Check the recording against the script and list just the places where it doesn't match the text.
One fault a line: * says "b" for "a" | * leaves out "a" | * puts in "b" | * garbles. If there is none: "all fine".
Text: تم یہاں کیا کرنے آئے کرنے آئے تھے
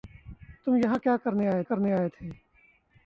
all fine